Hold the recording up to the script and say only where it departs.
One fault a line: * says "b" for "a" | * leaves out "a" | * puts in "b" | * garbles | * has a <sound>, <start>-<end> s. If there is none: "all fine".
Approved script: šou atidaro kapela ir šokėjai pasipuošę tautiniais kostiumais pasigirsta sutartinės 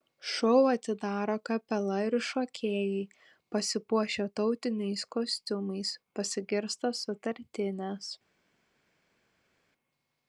all fine